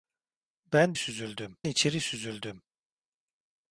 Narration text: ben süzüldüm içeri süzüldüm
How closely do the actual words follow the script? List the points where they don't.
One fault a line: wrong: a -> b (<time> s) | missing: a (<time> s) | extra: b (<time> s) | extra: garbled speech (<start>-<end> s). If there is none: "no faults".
no faults